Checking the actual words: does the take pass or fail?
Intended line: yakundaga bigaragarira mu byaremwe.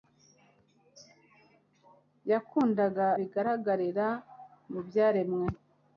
pass